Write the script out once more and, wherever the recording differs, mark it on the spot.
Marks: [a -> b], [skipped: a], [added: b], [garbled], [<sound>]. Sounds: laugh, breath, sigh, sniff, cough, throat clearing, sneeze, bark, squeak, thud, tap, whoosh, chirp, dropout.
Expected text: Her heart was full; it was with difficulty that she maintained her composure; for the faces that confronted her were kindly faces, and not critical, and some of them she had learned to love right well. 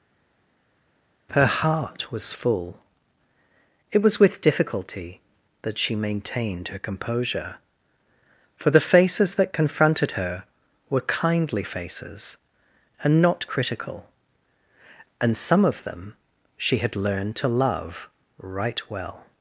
Her heart was full; it was with difficulty that she maintained her composure; for the faces that confronted her were kindly faces, and not critical, and some of them she had learned to love right well.